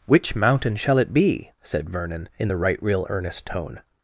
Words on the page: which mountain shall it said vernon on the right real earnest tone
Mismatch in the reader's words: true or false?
true